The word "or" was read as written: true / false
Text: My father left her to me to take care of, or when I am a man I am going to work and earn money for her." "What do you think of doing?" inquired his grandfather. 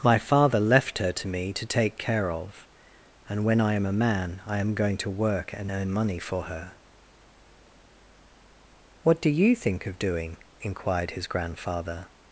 false